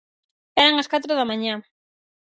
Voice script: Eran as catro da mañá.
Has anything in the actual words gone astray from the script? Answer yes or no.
no